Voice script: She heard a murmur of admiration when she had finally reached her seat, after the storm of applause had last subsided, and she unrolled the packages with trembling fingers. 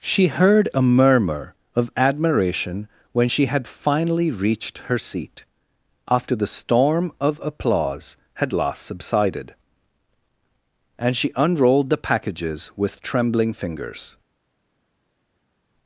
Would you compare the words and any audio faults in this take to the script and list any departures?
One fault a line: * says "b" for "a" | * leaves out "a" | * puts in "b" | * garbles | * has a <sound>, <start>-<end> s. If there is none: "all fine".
all fine